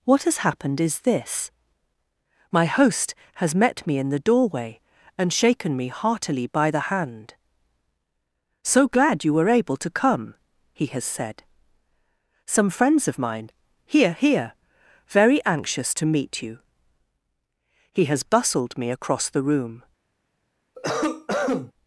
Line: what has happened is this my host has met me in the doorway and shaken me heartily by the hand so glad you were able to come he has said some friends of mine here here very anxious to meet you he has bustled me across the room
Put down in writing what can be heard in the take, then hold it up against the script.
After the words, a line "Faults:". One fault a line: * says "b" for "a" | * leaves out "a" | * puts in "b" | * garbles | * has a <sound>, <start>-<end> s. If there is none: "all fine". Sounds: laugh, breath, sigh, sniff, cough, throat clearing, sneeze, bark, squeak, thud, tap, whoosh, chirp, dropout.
what has happened is this my host has met me in the doorway and shaken me heartily by the hand so glad you were able to come he has said some friends of mine here here very anxious to meet you he has bustled me across the room
Faults:
* has a cough, 20.7-21.7 s